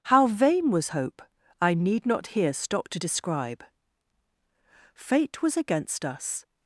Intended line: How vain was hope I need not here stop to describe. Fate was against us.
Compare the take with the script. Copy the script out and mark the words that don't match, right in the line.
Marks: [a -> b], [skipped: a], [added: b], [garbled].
How vain was hope I need not here stop to describe. Fate was against us.